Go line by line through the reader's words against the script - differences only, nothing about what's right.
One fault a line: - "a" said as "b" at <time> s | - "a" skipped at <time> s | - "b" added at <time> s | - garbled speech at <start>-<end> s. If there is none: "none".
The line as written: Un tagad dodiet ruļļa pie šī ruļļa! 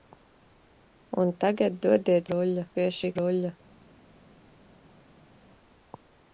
none